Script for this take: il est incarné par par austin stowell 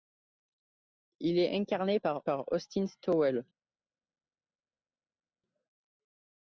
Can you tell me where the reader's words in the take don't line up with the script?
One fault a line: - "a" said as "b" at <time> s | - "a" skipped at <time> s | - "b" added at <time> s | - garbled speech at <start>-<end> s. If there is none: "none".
none